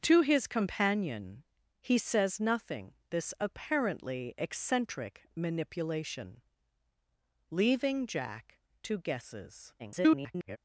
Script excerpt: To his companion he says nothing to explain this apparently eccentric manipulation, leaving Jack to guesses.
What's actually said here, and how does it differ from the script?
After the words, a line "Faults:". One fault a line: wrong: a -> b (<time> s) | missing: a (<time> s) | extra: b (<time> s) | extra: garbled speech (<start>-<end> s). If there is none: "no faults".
To his companion he says nothing this apparently eccentric manipulation, leaving Jack to guesses. [garbled]
Faults:
missing: to explain (2.9 s)
extra: garbled speech (9.8-10.6 s)